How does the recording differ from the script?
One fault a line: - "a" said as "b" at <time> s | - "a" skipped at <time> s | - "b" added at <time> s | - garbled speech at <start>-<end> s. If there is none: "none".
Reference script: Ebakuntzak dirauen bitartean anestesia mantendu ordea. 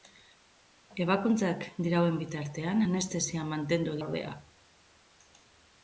none